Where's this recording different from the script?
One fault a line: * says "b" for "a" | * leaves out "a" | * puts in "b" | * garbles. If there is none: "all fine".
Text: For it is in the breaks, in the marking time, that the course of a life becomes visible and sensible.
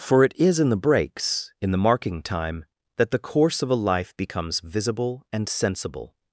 all fine